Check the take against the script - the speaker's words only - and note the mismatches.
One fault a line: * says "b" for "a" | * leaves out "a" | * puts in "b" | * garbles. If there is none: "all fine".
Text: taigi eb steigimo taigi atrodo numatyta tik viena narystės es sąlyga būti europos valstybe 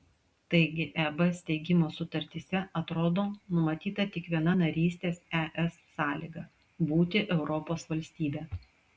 * says "sutartyse" for "taigi"